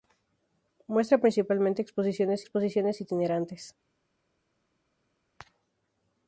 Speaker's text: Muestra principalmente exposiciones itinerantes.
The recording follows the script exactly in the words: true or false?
false